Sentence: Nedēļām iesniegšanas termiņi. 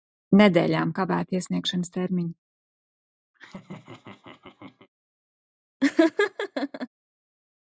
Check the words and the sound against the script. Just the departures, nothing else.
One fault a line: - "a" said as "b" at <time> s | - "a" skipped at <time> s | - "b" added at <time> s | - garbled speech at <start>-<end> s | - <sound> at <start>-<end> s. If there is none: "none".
- "kavēti" added at 1.0 s
- laugh at 3.3-4.9 s
- laugh at 5.8-6.9 s